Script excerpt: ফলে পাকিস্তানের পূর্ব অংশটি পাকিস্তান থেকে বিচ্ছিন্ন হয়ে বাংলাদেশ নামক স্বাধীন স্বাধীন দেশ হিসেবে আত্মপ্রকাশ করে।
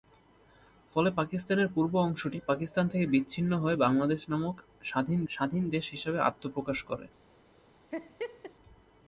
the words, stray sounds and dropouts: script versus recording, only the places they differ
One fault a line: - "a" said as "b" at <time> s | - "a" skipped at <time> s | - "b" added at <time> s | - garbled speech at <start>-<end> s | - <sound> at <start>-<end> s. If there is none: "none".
- laugh at 7.9-8.5 s